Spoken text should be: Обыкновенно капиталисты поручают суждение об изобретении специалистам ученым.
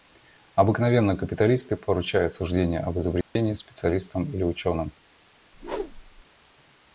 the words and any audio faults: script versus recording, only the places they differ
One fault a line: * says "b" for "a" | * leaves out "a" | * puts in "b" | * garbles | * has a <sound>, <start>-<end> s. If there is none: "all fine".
* has a dropout, 3.2-3.4 s
* puts in "или"
* has a whoosh, 5.5-6.2 s